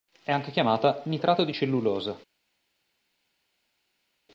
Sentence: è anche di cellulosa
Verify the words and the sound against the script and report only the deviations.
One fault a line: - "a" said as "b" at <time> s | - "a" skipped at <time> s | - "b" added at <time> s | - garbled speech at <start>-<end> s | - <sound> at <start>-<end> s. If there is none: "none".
- "chiamata nitrato" added at 0.5 s